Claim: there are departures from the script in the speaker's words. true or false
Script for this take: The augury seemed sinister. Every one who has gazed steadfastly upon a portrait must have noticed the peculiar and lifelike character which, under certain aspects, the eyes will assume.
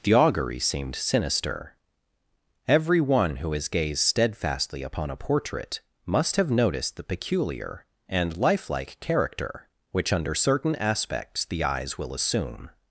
false